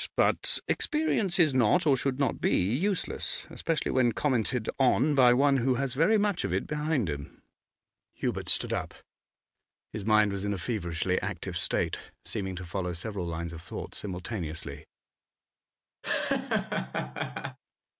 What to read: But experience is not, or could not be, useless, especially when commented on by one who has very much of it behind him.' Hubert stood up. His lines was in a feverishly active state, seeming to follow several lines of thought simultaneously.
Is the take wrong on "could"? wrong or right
wrong